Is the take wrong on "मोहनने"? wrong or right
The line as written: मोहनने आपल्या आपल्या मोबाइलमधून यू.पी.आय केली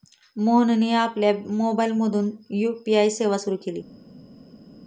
right